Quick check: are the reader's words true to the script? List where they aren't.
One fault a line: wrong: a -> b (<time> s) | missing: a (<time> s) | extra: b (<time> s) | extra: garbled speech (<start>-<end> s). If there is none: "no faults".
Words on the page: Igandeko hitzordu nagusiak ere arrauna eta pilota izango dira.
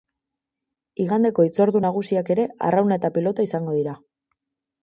no faults